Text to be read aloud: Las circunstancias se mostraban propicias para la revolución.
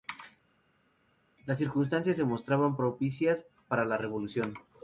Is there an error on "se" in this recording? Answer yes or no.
no